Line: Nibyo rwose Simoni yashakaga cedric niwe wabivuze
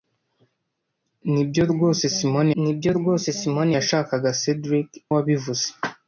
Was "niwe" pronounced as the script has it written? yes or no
no